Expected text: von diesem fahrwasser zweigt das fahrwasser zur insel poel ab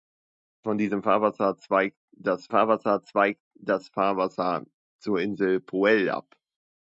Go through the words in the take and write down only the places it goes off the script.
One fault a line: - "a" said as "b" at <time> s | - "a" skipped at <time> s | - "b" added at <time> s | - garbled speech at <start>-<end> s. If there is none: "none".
- "zweigt das fahrwasser" added at 3.0 s